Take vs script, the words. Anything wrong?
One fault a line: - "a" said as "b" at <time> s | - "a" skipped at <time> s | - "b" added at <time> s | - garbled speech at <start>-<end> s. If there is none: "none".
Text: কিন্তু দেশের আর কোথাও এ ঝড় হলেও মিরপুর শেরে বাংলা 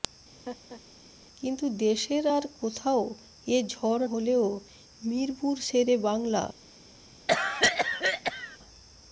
none